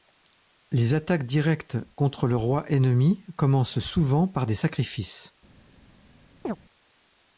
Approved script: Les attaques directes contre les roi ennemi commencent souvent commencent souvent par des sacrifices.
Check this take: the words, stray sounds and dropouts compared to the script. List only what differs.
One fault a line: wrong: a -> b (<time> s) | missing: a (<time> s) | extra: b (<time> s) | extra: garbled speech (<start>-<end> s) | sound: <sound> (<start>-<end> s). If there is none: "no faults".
wrong: les -> le (2.2 s)
missing: commencent souvent (4.3 s)
sound: chirp (6.4-6.6 s)